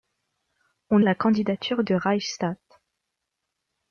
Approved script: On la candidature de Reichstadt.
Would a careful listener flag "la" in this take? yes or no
no